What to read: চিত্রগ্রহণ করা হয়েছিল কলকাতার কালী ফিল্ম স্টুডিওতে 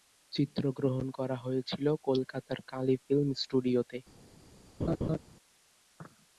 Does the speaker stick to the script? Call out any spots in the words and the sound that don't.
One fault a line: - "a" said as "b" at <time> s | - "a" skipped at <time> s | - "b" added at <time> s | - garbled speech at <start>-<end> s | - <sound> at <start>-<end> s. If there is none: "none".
- laugh at 4.8-5.2 s